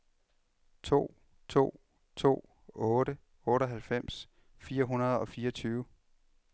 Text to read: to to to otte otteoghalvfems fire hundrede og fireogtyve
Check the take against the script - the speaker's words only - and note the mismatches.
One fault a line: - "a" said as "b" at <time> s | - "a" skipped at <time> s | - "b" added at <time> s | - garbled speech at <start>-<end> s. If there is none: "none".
none